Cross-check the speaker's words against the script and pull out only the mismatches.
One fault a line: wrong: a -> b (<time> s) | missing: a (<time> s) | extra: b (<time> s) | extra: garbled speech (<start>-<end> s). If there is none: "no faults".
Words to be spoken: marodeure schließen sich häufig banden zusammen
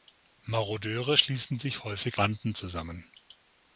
no faults